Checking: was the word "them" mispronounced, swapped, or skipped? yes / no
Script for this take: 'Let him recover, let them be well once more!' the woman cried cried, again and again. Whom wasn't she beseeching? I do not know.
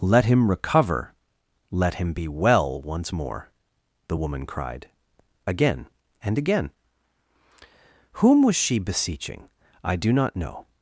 yes